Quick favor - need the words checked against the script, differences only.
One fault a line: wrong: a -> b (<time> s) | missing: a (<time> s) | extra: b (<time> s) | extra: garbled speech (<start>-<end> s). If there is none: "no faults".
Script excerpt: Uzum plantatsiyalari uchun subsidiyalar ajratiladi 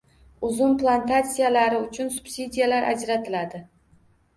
no faults